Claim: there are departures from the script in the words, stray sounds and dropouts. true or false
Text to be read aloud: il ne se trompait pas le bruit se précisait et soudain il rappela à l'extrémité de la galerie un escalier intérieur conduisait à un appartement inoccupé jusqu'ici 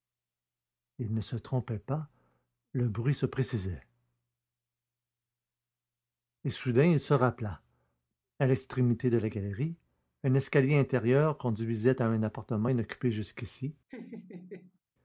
true